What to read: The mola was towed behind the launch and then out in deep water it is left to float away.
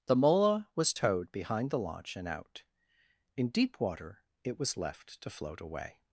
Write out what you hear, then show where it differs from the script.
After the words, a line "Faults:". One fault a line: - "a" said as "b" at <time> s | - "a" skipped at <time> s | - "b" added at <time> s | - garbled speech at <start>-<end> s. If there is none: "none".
The mola was towed behind the launch and out in deep water it was left to float away.
Faults:
- "then" skipped at 2.3 s
- "is" said as "was" at 4.6 s